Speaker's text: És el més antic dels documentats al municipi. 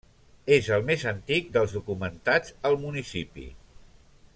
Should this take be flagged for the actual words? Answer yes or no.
no